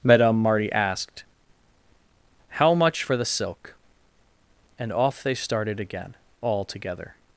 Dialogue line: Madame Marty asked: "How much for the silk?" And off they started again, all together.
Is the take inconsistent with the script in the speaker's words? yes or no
no